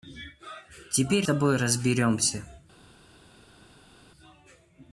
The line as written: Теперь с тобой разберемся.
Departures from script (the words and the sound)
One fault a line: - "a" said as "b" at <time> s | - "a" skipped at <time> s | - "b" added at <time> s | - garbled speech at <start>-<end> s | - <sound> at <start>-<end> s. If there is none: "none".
- "с" skipped at 1.3 s